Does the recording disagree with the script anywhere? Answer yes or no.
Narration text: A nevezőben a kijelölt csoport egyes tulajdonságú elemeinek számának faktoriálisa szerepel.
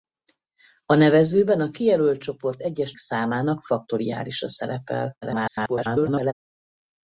yes